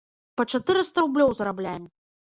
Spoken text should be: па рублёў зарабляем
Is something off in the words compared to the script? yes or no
yes